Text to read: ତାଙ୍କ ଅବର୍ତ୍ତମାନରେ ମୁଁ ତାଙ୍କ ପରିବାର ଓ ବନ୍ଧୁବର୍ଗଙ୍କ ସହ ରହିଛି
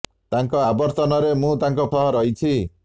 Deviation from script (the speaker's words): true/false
true